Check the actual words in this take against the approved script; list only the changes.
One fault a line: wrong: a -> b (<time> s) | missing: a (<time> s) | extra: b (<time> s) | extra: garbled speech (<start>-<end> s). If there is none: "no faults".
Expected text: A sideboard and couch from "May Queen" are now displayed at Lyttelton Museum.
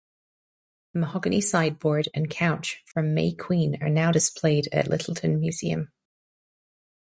extra: mahogany (1.0 s)